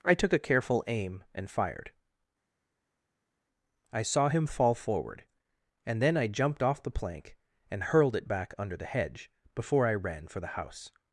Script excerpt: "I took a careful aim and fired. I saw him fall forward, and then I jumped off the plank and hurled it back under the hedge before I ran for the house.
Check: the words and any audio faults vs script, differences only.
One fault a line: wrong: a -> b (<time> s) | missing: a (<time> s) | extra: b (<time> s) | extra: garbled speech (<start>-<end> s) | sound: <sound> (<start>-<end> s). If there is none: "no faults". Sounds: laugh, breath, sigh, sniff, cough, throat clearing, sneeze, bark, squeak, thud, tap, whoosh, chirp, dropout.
no faults